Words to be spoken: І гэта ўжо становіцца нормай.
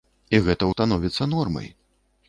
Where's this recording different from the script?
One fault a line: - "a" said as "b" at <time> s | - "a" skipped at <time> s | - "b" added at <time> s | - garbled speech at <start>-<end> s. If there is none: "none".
- "ўжо" skipped at 0.7 s